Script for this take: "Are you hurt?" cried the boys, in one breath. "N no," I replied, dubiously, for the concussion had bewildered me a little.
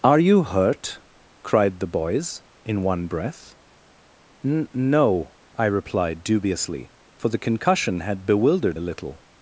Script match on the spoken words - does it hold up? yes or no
no